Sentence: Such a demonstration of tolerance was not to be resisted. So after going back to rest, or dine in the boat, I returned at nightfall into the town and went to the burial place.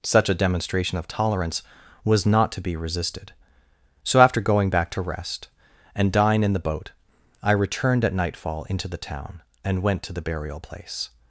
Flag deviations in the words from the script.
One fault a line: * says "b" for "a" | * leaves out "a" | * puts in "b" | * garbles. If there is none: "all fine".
* says "and" for "or"